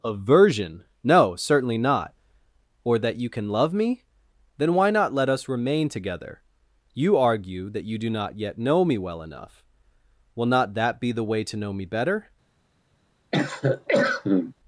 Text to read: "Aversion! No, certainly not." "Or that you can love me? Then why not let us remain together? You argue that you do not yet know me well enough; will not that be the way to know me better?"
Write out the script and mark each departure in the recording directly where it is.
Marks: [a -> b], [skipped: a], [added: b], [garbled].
"Aversion! No, certainly not." "Or that you can love me? Then why not let us remain together? You argue that you do not yet know me well enough; will not that be the way to know me better?"